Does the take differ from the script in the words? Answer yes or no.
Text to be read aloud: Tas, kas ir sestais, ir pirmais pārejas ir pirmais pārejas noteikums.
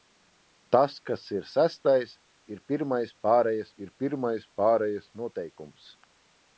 no